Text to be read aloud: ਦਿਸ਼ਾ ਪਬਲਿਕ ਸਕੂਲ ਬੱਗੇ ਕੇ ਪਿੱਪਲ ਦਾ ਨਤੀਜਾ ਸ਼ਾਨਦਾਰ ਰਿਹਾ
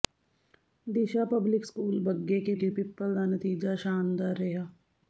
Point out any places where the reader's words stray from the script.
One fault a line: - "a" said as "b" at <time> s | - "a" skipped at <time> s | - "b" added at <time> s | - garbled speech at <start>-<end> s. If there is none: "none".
- "ਕੇ" added at 2.5 s